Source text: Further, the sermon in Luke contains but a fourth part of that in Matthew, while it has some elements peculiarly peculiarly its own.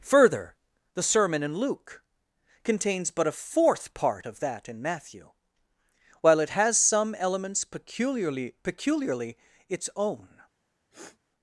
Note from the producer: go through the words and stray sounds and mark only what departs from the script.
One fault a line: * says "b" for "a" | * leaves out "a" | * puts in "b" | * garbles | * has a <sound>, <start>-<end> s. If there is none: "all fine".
* has a sniff, 10.9-11.2 s